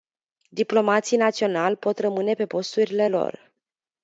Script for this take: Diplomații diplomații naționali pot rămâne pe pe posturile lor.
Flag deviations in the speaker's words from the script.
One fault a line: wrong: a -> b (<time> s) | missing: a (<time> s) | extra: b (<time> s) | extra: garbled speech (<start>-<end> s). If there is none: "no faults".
missing: diplomații (1.2 s)
missing: pe (2.5 s)